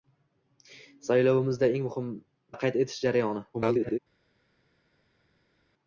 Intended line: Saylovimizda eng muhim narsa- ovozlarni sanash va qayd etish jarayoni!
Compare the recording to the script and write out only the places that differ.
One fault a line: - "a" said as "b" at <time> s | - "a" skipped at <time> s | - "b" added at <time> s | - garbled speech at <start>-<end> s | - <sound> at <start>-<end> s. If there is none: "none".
- "narsa ovozlarni sanash" skipped at 2.1 s
- garbled speech at 3.5-4.0 s